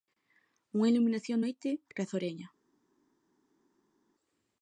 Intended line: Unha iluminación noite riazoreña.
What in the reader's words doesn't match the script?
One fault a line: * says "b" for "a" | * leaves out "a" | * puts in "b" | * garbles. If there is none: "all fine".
all fine